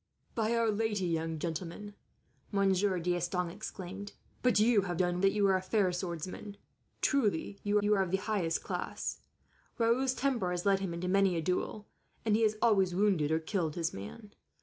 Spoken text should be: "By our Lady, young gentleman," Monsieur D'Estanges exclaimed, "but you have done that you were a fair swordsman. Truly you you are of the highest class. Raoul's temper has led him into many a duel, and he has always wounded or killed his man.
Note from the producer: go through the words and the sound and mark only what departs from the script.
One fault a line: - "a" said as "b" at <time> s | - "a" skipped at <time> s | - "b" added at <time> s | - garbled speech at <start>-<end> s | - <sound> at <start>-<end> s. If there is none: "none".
none